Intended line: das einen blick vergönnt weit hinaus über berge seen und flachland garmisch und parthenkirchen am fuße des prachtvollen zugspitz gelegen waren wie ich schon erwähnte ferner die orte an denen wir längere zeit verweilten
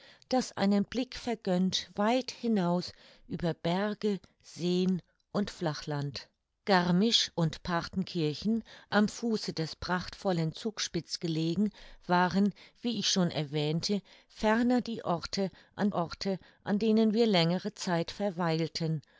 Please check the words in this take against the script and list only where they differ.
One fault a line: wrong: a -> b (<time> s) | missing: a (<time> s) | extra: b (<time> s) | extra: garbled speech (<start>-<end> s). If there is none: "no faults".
extra: orte an (15.9 s)